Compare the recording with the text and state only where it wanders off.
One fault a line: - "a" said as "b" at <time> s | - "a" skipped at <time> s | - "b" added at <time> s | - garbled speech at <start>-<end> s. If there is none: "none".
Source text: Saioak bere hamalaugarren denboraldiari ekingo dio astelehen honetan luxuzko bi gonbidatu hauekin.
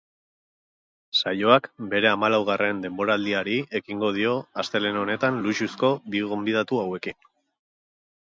none